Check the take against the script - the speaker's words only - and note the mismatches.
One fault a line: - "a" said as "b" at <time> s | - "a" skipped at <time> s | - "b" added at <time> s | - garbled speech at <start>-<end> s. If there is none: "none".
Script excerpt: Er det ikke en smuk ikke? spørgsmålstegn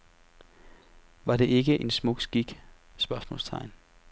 - "Er" said as "Var" at 1.2 s
- "ikke" said as "skik" at 2.2 s